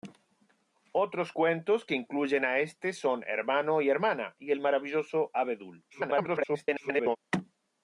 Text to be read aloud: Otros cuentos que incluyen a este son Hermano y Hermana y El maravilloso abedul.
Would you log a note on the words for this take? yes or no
yes